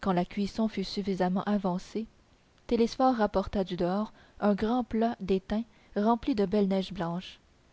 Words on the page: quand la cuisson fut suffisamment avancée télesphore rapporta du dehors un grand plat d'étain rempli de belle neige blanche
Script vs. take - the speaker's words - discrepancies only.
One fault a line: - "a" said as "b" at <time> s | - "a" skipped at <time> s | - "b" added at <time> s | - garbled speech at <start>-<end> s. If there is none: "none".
none